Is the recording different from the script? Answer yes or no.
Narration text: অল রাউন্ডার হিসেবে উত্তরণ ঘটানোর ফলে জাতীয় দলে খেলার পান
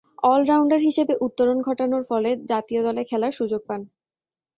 yes